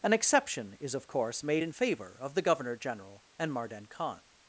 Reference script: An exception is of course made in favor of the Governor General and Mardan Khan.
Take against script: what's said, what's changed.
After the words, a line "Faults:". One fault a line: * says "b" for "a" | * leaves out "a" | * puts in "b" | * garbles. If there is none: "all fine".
An exception is of course made in favor of the Governor General and Mardan Khan.
Faults:
all fine